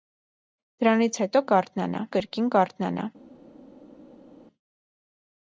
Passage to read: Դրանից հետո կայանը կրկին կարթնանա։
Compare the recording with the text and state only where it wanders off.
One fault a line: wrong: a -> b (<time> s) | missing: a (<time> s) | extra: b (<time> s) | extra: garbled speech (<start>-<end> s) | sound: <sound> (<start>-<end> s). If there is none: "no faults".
wrong: կայանը -> կարթնանա (1.5 s)